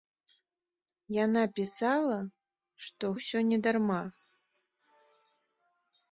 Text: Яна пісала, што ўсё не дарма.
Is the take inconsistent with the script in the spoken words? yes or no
no